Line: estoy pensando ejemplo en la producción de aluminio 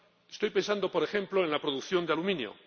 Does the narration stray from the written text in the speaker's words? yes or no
yes